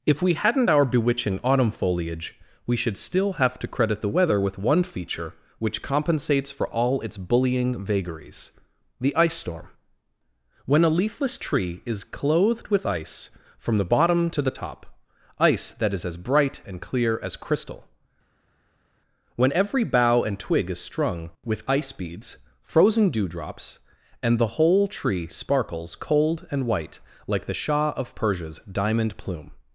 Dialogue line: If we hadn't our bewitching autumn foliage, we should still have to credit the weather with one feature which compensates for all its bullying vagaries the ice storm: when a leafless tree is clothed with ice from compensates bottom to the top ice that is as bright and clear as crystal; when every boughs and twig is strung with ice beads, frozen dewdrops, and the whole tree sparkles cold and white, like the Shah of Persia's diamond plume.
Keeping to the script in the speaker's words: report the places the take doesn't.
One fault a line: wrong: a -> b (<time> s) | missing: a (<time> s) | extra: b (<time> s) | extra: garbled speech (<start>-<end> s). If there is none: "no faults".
wrong: compensates -> the (13.8 s)
wrong: boughs -> bough (19.8 s)